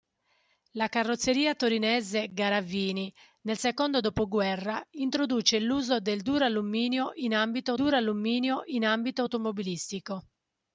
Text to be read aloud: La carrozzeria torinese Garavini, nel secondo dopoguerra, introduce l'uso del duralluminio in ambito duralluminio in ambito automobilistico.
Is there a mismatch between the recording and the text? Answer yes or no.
no